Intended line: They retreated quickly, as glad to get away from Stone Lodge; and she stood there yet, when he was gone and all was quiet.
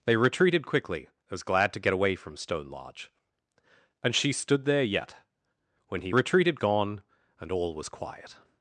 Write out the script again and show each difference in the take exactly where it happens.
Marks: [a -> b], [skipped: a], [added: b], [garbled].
They retreated quickly, as glad to get away from Stone Lodge; and she stood there yet, when he [was -> retreated] gone and all was quiet.